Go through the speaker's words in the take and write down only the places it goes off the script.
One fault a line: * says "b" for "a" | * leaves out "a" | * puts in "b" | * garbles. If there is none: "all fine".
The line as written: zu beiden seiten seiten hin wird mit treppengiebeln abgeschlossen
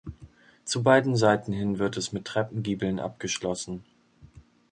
* leaves out "seiten"
* puts in "es"